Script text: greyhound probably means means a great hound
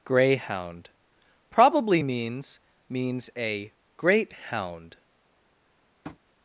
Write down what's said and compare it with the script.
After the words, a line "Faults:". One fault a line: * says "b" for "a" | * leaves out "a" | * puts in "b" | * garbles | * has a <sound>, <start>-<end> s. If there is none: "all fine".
greyhound probably means means a great hound
Faults:
* has a tap, 6.0-6.2 s